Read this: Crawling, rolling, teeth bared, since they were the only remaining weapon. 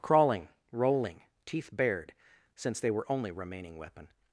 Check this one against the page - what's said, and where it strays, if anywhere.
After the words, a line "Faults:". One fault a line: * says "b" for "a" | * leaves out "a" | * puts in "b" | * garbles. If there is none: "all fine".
Crawling, rolling, teeth bared, since they were only remaining weapon.
Faults:
* leaves out "the"